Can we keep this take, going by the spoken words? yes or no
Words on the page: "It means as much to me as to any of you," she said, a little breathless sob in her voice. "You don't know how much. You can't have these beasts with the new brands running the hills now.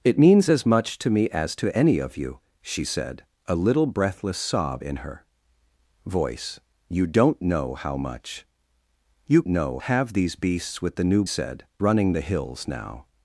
no